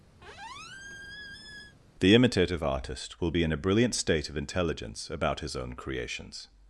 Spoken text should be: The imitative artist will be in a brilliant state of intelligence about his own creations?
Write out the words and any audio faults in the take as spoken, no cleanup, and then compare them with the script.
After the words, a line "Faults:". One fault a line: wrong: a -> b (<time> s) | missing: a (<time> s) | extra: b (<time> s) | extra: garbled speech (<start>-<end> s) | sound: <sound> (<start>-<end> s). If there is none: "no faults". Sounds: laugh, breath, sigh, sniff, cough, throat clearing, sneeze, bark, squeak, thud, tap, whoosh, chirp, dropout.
The imitative artist will be in a brilliant state of intelligence about his own creations?
Faults:
sound: squeak (0.2-1.8 s)